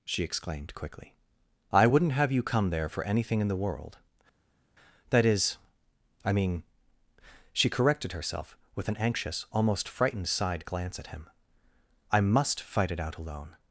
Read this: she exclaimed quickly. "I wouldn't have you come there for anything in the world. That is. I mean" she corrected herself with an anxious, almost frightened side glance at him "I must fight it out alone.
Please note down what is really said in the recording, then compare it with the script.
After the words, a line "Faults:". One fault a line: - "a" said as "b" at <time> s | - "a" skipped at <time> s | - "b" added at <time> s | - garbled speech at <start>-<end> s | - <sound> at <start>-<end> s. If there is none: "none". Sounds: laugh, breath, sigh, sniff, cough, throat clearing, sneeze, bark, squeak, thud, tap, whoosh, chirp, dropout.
she exclaimed quickly. "I wouldn't have you come there for anything in the world. That is. I mean" she corrected herself with an anxious, almost frightened side glance at him "I must fight it out alone.
Faults:
none